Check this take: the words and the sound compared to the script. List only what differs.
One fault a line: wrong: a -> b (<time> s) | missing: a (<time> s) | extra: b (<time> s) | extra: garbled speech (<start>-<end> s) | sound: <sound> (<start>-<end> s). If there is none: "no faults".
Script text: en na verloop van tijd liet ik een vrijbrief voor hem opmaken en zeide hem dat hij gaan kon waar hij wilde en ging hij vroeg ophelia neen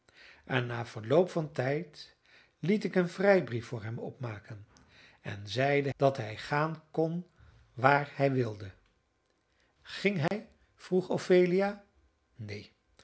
missing: hem (5.9 s)
missing: en (8.7 s)
sound: dropout (10.3-10.3 s)